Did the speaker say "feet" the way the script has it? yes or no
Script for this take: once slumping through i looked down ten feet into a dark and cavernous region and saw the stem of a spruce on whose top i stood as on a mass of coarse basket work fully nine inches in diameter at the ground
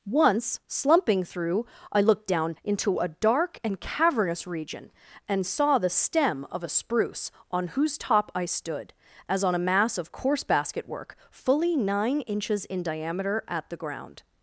no